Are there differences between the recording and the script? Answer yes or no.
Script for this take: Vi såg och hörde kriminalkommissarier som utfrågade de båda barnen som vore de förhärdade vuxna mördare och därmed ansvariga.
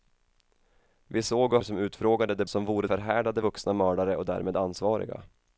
yes